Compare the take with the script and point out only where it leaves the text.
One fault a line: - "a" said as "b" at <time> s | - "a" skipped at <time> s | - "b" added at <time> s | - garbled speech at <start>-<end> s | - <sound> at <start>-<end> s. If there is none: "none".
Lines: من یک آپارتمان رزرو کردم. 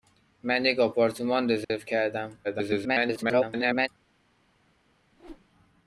- dropout at 1.6-1.7 s
- garbled speech at 2.4-3.9 s
- whoosh at 5.1-5.5 s